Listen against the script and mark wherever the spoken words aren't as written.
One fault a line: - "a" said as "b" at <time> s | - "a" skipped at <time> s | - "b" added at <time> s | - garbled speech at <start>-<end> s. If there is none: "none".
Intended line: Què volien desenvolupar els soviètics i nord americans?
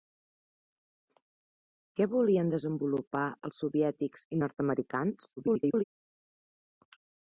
- garbled speech at 5.4-5.8 s